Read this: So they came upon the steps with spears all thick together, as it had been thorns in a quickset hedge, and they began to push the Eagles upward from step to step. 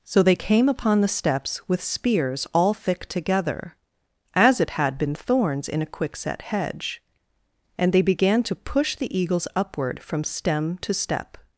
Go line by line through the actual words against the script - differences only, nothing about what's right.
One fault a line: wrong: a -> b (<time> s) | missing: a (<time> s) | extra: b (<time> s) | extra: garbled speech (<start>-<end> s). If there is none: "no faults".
wrong: step -> stem (10.2 s)